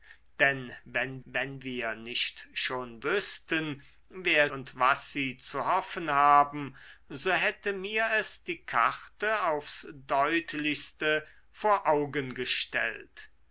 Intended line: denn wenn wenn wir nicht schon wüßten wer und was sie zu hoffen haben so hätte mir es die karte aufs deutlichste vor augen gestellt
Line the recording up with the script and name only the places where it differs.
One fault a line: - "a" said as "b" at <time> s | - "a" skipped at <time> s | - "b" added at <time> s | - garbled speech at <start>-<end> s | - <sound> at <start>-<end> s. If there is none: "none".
none